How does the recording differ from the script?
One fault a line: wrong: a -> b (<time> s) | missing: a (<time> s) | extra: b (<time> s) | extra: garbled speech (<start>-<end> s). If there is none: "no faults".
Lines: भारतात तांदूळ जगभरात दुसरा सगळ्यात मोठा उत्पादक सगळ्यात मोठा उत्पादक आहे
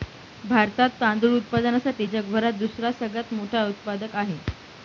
extra: उत्पादनासाठी (1.4 s)
missing: सगळ्यात मोठा उत्पादक (4.1 s)